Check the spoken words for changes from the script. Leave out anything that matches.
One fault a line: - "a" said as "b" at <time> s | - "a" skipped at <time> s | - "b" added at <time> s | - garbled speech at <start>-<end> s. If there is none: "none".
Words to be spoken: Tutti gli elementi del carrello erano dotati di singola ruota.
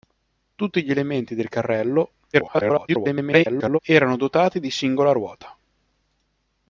- garbled speech at 2.3-3.8 s